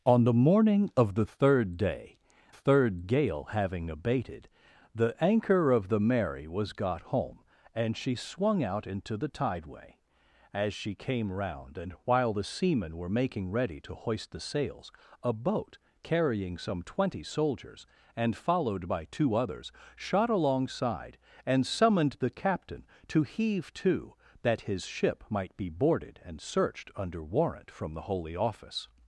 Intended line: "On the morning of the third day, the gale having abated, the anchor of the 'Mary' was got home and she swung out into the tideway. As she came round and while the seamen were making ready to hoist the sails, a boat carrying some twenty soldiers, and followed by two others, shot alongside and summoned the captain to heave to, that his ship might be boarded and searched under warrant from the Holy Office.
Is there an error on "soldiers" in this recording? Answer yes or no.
no